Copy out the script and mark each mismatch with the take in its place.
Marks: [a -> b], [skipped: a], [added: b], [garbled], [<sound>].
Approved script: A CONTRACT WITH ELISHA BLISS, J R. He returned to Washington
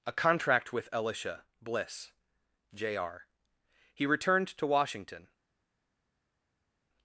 A CONTRACT WITH ELISHA BLISS, J R. He returned to Washington